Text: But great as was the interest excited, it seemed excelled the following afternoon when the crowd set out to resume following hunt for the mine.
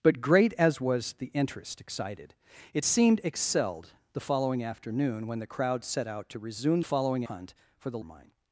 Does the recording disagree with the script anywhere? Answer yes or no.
no